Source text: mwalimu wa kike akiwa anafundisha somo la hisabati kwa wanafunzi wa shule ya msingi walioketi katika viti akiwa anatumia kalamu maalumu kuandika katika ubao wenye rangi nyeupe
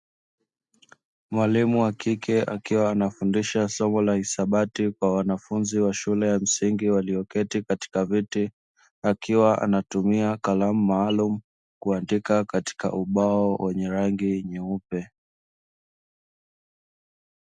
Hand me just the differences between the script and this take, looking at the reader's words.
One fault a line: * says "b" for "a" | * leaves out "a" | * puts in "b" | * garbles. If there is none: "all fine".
all fine